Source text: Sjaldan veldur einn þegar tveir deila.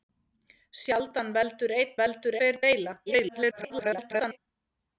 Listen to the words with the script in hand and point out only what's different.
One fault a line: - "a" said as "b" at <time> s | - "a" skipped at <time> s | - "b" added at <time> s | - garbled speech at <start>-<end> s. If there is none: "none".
- "þegar" said as "veldur" at 2.0 s
- garbled speech at 3.1-4.4 s